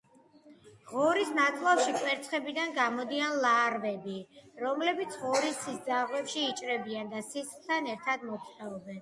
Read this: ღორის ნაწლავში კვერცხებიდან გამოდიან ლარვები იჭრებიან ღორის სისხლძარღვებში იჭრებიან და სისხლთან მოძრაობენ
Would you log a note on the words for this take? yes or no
yes